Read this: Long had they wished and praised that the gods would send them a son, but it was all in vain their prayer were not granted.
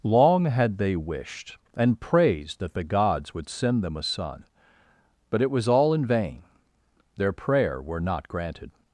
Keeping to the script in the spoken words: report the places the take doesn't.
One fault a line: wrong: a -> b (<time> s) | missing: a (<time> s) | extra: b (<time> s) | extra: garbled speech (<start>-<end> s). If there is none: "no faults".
no faults